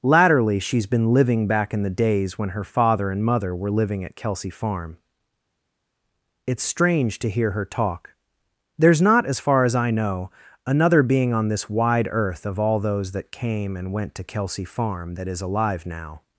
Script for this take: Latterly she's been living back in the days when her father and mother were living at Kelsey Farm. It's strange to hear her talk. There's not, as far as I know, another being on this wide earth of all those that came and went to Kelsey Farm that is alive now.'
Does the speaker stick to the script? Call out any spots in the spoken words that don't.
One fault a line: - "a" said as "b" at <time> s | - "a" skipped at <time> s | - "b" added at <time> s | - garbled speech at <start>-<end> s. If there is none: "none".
none